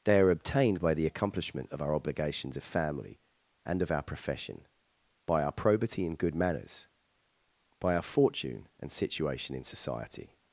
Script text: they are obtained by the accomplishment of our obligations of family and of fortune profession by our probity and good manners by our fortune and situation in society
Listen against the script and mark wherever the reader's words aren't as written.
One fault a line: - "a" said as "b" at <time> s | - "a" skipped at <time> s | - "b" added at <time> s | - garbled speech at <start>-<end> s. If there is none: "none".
- "fortune" said as "our" at 3.9 s